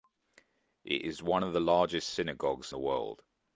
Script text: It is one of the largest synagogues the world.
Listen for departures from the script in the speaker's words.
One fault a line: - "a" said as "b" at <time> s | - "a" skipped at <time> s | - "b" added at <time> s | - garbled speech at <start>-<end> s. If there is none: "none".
none